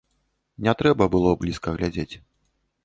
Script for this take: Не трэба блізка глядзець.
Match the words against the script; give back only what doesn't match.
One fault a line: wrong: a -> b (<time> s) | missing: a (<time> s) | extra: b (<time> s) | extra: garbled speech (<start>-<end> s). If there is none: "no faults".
extra: было (1.2 s)